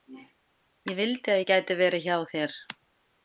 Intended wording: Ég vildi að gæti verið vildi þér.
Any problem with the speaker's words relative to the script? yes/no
yes